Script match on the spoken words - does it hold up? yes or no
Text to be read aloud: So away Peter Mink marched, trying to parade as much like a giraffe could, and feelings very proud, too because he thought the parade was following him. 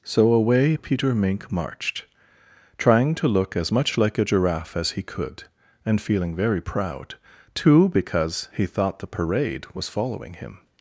no